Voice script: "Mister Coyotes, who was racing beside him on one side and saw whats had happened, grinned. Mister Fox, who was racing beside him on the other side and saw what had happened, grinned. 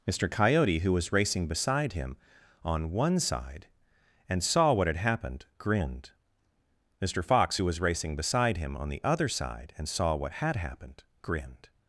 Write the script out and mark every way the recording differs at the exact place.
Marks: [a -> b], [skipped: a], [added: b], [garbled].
"Mister [Coyotes, -> Coyote] who was racing beside him on one side and saw [whats -> what] had happened, grinned. Mister Fox, who was racing beside him on the other side and saw what had happened, grinned.